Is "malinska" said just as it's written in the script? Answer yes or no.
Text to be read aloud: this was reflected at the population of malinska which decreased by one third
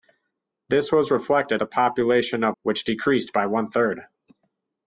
no